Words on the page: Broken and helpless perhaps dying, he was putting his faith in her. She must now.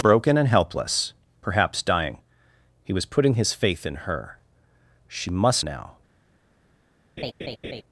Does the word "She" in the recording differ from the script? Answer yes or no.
no